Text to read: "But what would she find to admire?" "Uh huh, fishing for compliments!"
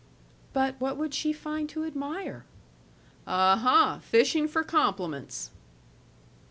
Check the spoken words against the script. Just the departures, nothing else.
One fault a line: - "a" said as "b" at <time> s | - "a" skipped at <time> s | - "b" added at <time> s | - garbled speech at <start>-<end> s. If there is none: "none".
none